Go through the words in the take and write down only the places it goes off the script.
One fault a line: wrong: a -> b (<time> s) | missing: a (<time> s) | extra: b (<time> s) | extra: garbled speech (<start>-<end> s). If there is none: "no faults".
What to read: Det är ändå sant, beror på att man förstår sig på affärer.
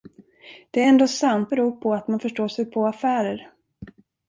no faults